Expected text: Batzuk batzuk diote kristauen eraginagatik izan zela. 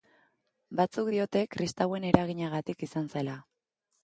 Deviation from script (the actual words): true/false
true